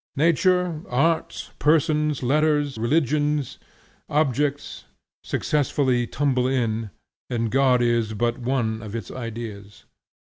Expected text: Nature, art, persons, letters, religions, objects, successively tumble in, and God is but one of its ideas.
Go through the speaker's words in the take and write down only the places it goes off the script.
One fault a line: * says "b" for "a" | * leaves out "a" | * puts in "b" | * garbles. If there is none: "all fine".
all fine